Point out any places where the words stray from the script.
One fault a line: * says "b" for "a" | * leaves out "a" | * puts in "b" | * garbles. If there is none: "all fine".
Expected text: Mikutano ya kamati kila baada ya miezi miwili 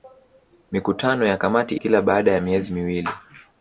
all fine